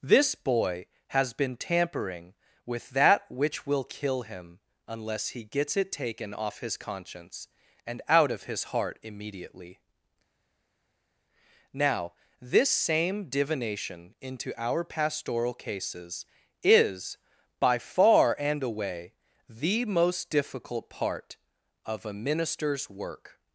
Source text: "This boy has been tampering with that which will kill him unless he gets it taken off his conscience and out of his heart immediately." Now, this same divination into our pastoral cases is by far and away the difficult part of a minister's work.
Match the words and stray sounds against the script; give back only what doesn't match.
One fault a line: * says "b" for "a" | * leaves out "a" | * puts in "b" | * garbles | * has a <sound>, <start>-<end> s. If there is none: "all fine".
* puts in "most"